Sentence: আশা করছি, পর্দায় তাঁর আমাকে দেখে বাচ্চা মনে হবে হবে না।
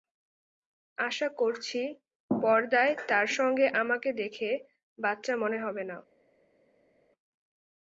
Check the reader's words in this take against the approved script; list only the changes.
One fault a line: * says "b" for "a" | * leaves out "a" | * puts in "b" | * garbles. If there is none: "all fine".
* puts in "সঙ্গে"
* leaves out "হবে"